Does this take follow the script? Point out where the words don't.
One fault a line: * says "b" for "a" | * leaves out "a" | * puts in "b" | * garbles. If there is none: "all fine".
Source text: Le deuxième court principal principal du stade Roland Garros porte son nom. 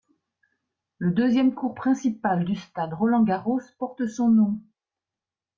* leaves out "principal"